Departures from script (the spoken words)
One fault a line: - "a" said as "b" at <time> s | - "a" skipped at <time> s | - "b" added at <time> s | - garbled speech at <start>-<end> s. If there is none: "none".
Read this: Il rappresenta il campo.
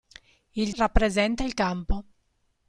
none